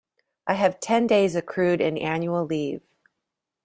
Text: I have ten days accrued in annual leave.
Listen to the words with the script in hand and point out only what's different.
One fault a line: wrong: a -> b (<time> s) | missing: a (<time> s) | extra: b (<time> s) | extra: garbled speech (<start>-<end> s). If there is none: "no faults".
no faults